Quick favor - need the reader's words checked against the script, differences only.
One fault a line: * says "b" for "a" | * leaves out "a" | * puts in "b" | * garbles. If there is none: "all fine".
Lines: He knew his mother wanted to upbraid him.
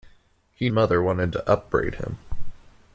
* leaves out "knew his"